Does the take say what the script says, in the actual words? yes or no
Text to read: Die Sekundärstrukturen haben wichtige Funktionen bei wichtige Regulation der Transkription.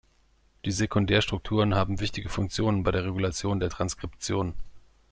no